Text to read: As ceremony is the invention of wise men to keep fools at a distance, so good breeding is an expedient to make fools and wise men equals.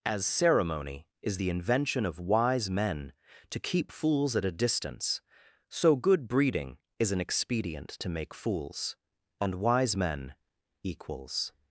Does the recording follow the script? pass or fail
pass